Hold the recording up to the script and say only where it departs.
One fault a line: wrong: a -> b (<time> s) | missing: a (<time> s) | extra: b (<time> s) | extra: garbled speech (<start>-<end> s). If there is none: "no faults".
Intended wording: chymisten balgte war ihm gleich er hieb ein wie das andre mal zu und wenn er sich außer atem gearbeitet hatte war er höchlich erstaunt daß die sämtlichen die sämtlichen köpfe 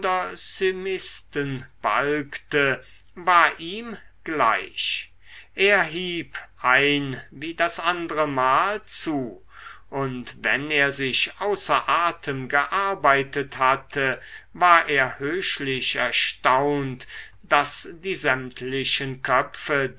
missing: die sämtlichen (19.2 s)